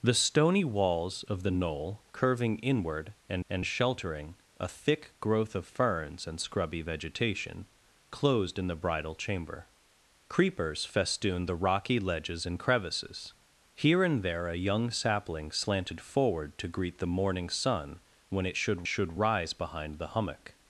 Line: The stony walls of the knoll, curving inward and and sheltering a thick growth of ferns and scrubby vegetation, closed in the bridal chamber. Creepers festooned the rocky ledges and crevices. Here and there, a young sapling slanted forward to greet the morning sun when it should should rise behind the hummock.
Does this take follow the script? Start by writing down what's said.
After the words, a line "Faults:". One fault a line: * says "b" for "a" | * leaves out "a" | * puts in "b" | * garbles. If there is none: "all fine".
The stony walls of the knoll, curving inward and and sheltering a thick growth of ferns and scrubby vegetation, closed in the bridal chamber. Creepers festooned the rocky ledges and crevices. Here and there, a young sapling slanted forward to greet the morning sun when it should should rise behind the hummock.
Faults:
all fine